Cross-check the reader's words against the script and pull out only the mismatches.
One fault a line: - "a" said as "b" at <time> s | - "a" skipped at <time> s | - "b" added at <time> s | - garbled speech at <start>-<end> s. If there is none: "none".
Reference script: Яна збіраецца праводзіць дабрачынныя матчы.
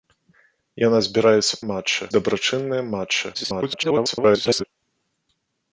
- "праводзіць" said as "матчы" at 1.7 s
- garbled speech at 3.3-4.6 s